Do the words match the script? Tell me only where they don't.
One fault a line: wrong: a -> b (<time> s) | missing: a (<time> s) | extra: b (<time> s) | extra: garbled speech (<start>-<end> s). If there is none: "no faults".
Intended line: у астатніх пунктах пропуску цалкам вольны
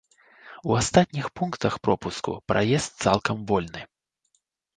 extra: праезд (2.5 s)